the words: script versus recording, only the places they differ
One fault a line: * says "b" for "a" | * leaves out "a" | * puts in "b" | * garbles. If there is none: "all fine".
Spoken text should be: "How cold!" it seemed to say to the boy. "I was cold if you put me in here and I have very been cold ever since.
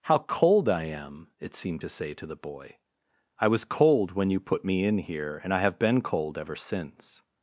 * puts in "I am"
* says "when" for "if"
* leaves out "very"